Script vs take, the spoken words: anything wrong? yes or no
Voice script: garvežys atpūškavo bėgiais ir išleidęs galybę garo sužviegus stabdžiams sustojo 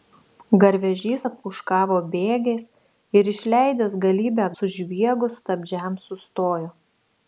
yes